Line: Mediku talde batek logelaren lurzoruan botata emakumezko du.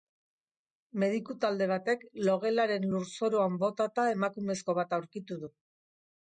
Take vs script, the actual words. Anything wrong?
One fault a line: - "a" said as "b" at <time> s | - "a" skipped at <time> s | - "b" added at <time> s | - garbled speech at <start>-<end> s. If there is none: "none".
- "bat aurkitu" added at 4.8 s